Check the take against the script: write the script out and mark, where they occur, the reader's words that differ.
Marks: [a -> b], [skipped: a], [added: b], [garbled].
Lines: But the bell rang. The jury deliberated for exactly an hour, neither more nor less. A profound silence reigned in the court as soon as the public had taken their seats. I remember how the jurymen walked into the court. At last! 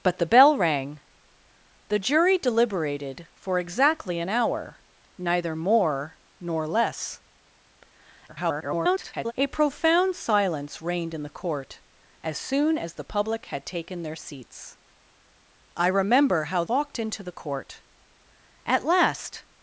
But the bell rang. The jury deliberated for exactly an hour, neither more nor less. [garbled] A profound silence reigned in the court as soon as the public had taken their seats. I remember how [skipped: the jurymen] walked into the court. At last!